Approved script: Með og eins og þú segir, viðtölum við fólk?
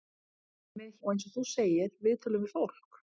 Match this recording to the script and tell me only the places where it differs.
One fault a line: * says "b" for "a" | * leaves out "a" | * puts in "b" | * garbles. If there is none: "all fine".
all fine